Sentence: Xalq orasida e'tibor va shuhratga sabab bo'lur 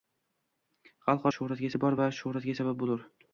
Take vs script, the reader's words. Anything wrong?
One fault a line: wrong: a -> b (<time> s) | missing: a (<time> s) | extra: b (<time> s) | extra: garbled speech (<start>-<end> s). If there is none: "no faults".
wrong: orasida -> shuhratga (1.3 s)